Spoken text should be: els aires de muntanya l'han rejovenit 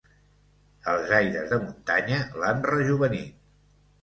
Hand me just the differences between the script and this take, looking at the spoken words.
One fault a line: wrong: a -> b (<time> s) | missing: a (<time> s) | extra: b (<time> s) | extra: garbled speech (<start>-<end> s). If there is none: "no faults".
no faults